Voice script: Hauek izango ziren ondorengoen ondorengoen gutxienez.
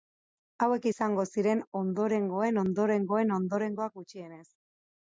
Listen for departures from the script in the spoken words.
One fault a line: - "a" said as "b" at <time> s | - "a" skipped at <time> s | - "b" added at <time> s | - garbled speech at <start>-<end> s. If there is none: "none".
- "ondorengoak" added at 3.4 s